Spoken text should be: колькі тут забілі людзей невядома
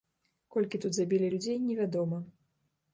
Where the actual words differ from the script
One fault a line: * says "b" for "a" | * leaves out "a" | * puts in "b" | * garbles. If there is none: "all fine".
all fine